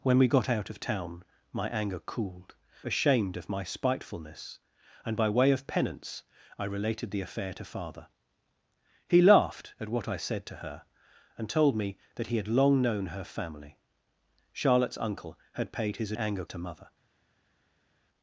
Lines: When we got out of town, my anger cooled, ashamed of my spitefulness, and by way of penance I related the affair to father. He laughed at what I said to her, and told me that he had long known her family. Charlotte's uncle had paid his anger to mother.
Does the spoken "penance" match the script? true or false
true